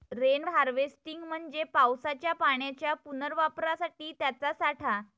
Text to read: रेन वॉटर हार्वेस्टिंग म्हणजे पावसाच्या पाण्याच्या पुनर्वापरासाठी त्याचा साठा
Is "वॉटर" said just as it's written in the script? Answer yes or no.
no